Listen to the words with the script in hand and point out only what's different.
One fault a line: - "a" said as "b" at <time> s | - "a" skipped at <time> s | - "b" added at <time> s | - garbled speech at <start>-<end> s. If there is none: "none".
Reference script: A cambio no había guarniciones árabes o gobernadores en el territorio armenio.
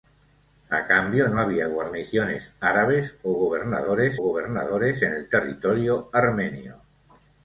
- "gobernadores" added at 4.2 s